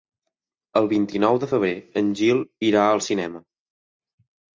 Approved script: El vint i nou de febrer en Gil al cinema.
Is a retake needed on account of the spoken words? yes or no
yes